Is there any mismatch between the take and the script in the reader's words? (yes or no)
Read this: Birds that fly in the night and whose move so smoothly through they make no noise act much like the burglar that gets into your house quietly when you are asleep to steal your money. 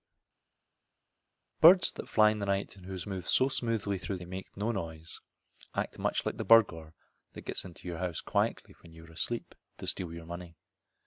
no